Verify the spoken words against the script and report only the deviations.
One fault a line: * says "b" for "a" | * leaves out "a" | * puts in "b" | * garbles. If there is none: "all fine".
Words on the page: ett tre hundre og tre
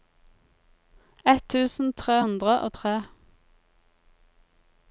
* puts in "tusen"